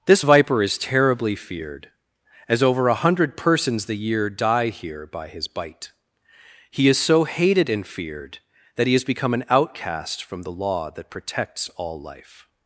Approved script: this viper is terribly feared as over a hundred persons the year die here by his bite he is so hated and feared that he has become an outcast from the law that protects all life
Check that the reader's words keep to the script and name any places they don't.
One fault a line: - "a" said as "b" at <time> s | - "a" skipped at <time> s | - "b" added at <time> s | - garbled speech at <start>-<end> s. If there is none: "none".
none